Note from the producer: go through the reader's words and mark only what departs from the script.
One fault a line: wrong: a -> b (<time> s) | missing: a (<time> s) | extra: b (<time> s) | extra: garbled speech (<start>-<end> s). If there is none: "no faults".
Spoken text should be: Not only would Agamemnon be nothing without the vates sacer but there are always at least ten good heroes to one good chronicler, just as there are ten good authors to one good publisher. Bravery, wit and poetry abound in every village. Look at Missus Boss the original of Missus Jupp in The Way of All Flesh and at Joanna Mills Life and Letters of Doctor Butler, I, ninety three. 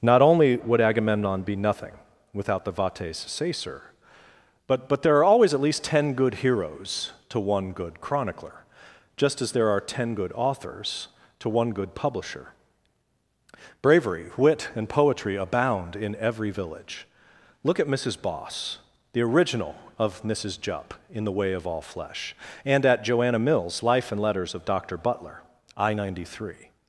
extra: but (4.9 s)